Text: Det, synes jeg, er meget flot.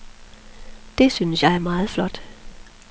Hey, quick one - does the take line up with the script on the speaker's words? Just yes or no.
yes